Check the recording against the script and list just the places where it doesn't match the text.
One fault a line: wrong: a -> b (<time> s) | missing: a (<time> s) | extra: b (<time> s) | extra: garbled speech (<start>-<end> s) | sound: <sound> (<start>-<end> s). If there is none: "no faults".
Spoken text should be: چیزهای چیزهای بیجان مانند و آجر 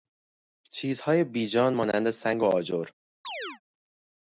missing: چیزهای (1.2 s)
extra: سنگ (2.1 s)
sound: chirp (3.2-3.6 s)